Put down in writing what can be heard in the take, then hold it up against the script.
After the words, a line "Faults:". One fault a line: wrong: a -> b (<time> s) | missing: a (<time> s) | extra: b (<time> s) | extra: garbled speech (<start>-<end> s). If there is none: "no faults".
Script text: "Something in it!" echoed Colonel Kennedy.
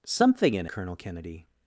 "Something in Colonel Kennedy.
Faults:
missing: it echoed (0.6 s)